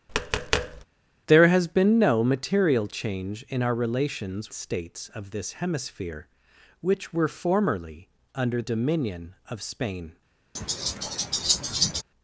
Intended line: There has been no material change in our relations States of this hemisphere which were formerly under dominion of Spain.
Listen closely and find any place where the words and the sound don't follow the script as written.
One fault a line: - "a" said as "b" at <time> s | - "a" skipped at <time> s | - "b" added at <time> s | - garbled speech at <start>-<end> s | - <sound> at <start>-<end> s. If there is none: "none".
- tap at 0.1-0.9 s
- laugh at 10.5-12.0 s